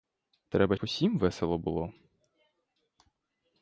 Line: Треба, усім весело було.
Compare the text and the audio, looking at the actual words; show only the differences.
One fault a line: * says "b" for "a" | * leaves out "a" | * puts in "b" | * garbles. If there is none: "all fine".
all fine